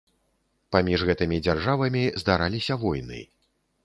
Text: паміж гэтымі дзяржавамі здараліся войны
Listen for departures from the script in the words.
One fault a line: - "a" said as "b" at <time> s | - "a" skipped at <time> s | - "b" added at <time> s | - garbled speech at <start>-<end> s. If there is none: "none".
none